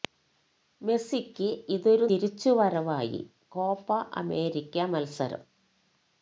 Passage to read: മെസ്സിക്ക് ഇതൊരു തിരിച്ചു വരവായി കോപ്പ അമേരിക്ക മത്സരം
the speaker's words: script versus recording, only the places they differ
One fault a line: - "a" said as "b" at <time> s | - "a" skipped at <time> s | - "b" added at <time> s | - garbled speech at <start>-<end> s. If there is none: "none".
none